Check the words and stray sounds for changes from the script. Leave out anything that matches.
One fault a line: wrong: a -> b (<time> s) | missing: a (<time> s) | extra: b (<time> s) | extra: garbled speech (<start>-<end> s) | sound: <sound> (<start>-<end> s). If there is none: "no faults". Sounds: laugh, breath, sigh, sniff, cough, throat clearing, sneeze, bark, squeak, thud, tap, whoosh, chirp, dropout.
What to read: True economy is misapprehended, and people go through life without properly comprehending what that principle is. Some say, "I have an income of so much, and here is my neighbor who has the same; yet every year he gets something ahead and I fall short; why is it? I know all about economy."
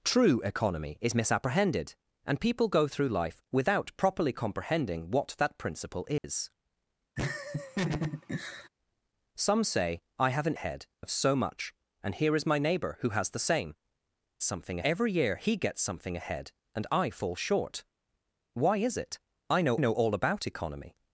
sound: dropout (6.2-6.2 s)
sound: laugh (7.2-8.7 s)
wrong: income -> ahead (10.5 s)
wrong: yet -> something (14.4 s)
extra: know (19.8 s)